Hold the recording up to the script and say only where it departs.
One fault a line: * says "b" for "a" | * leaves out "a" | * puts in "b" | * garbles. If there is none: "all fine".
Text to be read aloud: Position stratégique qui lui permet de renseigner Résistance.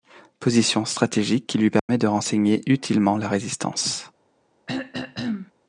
* puts in "utilement la"